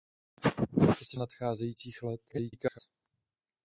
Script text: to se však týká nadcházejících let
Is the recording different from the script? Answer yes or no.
yes